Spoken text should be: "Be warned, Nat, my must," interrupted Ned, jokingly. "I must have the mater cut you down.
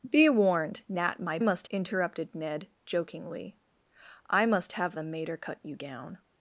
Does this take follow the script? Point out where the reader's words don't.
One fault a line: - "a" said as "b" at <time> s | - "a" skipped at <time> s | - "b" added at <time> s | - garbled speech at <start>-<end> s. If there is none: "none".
none